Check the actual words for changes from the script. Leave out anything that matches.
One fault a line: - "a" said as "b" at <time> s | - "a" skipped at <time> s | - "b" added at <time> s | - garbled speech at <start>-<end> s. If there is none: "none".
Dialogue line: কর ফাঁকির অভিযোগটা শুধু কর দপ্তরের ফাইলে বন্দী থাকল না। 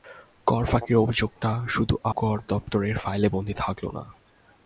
none